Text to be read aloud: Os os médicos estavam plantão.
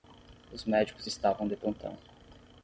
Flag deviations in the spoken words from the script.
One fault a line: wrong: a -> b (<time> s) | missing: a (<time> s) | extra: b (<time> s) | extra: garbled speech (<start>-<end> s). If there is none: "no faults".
missing: os (0.7 s)
extra: de (1.4 s)